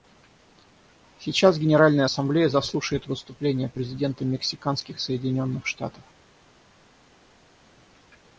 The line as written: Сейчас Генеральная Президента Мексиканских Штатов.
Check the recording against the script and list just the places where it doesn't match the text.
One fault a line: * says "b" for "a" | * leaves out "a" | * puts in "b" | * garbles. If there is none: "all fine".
* puts in "Ассамблея заслушает выступление"
* puts in "Соединенных"